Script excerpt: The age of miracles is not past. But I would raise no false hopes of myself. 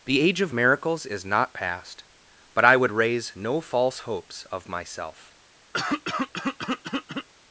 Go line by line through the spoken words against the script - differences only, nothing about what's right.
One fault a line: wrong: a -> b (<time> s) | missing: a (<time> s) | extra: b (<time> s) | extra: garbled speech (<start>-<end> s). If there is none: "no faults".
no faults